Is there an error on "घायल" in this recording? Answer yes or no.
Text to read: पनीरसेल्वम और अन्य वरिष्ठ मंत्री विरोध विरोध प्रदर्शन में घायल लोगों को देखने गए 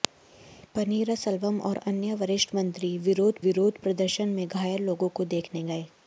no